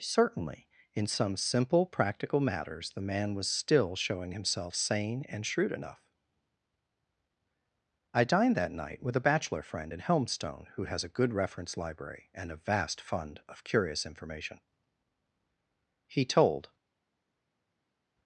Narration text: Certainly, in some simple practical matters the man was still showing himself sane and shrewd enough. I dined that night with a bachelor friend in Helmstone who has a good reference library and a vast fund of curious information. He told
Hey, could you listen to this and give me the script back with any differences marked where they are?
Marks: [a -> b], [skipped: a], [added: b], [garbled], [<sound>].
Certainly, in some simple practical matters the man was still showing himself sane and shrewd enough. I dined that night with a bachelor friend in Helmstone who has a good reference library and a vast fund of curious information. He told